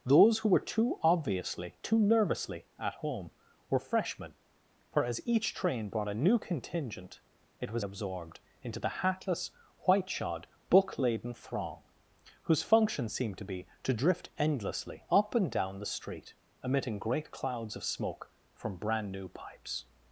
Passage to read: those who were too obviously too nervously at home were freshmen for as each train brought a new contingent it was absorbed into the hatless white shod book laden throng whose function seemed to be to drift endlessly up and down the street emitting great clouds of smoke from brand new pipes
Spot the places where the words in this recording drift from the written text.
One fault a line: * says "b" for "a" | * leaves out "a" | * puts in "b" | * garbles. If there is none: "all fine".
all fine